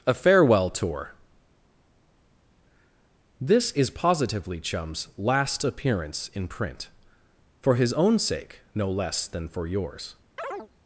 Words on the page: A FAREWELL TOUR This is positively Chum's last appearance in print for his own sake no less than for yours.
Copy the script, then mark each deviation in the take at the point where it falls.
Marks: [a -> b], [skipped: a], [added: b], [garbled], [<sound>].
A FAREWELL TOUR This is positively Chum's last appearance in print for his own sake no less than for yours. [chirp]